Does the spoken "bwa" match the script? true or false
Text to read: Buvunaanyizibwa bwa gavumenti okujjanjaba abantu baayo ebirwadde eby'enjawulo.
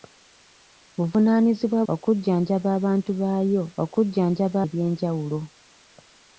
false